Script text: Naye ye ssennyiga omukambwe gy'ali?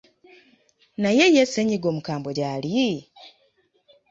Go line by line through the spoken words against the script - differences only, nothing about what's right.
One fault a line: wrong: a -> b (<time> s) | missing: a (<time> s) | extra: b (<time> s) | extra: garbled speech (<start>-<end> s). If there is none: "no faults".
no faults